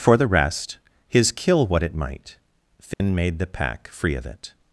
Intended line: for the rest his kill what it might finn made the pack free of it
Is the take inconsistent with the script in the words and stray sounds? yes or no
yes